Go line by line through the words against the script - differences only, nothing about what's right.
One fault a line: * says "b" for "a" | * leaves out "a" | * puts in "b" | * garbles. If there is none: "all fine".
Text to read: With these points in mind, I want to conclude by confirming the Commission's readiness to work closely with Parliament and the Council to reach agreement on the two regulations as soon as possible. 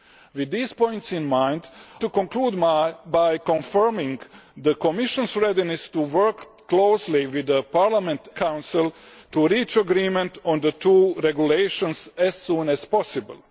* leaves out "I want"
* leaves out "and"